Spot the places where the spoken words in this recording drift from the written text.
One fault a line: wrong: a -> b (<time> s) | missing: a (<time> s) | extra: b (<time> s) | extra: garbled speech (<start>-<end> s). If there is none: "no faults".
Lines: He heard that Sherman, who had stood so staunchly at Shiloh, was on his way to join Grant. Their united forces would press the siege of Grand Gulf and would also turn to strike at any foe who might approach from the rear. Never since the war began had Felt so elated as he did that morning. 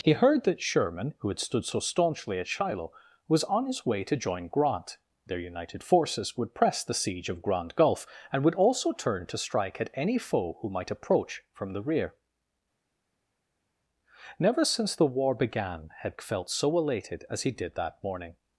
no faults